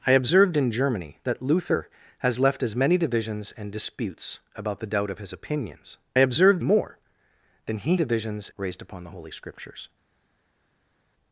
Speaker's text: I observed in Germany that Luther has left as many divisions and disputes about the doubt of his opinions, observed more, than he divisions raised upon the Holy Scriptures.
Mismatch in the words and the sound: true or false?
false